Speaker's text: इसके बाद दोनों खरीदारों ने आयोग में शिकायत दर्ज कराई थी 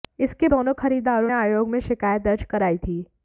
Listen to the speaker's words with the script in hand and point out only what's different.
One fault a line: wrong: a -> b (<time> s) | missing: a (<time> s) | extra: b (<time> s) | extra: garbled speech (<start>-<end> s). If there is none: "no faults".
missing: बाद (0.5 s)
missing: ने (1.3 s)